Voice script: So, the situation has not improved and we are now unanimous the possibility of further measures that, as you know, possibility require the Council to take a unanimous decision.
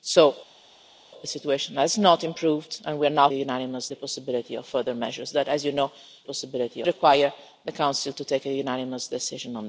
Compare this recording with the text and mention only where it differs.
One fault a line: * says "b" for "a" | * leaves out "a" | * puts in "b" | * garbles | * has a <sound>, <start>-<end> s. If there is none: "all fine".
all fine